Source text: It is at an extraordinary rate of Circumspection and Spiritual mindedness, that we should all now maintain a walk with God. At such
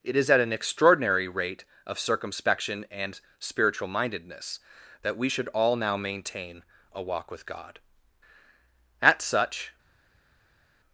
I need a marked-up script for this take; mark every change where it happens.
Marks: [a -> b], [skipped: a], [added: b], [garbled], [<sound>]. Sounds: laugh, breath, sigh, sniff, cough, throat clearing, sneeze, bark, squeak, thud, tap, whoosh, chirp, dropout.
It is at an extraordinary rate of Circumspection and Spiritual mindedness, that we should all now maintain a walk with God. At such